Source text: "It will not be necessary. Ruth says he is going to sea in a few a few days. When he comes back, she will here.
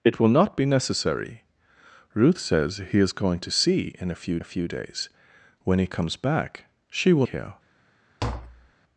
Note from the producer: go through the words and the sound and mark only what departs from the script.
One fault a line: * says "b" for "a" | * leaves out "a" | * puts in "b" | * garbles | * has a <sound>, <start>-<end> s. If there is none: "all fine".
* has a tap, 8.2-8.7 s